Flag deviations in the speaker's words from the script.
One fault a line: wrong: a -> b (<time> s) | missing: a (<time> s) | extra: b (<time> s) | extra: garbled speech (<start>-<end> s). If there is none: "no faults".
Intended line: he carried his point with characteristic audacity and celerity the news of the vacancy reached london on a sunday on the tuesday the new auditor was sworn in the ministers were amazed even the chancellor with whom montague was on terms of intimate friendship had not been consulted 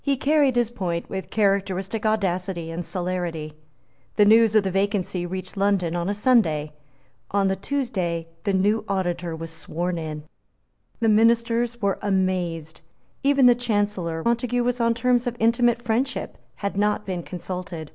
missing: with whom (14.2 s)